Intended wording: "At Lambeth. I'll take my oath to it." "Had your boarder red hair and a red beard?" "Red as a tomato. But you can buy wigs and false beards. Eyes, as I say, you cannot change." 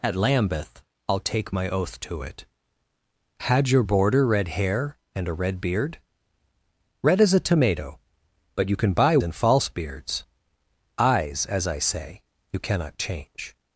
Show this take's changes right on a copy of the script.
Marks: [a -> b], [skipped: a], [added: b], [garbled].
"At Lambeth. I'll take my oath to it." "Had your boarder red hair and a red beard?" "Red as a tomato. But you can buy [skipped: wigs] and false beards. Eyes, as I say, you cannot change."